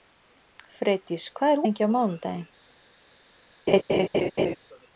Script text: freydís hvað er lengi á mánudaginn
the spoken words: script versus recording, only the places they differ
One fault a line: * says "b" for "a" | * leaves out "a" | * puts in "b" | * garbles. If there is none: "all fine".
all fine